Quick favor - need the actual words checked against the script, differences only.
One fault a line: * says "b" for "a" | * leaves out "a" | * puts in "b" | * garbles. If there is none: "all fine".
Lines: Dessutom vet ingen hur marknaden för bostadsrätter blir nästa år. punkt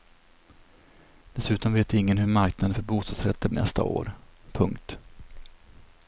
* leaves out "blir"